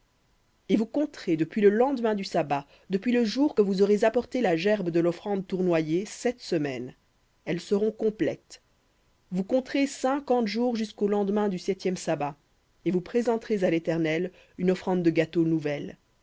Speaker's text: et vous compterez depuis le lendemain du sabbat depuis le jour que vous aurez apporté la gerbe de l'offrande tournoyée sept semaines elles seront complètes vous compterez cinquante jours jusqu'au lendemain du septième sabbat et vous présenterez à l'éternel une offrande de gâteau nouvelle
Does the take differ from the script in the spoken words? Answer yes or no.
no